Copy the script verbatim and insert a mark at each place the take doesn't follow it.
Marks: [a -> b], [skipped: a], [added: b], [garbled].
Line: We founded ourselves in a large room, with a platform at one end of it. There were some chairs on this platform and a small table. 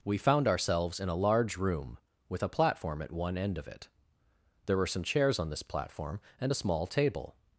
We [founded -> found] ourselves in a large room, with a platform at one end of it. There were some chairs on this platform and a small table.